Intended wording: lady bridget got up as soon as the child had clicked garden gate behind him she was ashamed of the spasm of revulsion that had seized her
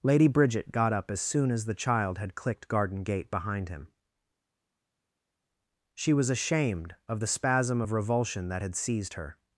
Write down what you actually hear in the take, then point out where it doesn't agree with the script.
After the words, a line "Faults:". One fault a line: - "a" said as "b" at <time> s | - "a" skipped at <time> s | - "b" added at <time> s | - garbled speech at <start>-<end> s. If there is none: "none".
lady bridget got up as soon as the child had clicked garden gate behind him she was ashamed of the spasm of revulsion that had seized her
Faults:
none